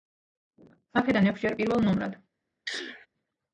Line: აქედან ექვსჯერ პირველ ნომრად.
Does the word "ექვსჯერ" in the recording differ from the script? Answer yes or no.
no